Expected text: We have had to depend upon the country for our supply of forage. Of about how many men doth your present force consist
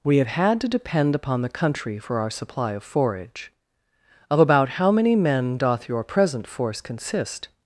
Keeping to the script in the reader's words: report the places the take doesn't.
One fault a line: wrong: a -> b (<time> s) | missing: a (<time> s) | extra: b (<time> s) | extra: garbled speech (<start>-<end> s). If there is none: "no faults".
no faults